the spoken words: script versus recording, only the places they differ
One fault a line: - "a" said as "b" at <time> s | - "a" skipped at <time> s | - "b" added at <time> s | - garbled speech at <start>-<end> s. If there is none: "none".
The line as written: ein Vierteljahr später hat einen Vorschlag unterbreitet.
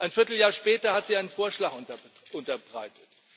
- "sie" added at 1.0 s